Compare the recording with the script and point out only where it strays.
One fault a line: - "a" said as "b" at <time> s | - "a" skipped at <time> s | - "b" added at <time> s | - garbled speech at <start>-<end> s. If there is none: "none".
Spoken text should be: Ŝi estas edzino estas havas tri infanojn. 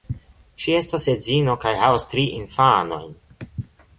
- "estas" said as "kaj" at 1.6 s